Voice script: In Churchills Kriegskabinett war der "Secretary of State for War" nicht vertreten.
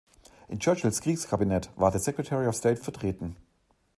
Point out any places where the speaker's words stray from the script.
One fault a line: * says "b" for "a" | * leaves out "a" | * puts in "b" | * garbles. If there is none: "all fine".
* leaves out "for War nicht"